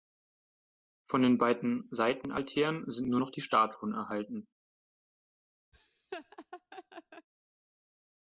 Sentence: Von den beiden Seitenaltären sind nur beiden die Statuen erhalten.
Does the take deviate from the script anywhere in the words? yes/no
yes